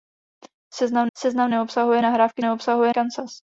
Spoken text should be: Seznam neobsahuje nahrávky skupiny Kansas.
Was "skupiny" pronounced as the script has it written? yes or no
no